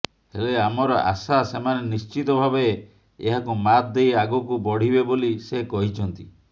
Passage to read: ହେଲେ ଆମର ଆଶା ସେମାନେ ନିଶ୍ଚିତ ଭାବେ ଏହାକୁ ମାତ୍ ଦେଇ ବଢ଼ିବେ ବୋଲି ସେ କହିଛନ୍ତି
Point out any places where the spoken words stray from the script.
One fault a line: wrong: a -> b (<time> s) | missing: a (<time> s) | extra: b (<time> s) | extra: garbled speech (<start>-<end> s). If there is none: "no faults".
extra: ଆଗକୁ (4.2 s)